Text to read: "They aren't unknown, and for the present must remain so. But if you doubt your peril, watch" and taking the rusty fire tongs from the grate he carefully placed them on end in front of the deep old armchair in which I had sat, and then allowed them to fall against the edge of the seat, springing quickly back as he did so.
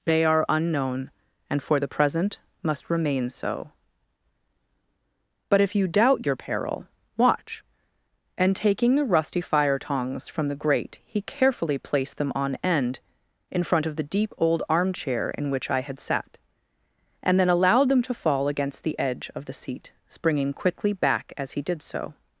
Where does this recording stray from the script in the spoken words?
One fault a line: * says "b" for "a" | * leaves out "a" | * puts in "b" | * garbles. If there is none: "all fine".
* says "are" for "aren't"